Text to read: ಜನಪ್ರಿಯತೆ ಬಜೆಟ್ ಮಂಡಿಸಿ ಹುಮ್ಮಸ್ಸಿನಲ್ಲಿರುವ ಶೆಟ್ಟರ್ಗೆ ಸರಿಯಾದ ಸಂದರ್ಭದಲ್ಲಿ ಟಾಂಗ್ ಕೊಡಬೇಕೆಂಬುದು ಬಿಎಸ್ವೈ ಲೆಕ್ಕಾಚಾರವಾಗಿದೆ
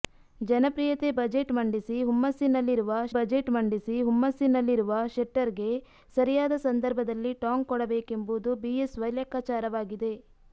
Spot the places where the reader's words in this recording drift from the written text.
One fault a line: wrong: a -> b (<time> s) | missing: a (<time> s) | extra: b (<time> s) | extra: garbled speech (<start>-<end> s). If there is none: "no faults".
extra: ಬಜೆಟ್ ಮಂಡಿಸಿ ಹುಮ್ಮಸ್ಸಿನಲ್ಲಿರುವ (3.1 s)